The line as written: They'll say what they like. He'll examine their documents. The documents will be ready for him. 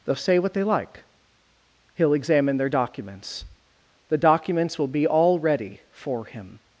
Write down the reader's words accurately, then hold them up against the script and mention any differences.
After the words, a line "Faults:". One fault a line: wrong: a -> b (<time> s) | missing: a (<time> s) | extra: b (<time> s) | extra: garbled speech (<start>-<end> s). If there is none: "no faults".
They'll say what they like. He'll examine their documents. The documents will be all ready for him.
Faults:
extra: all (5.0 s)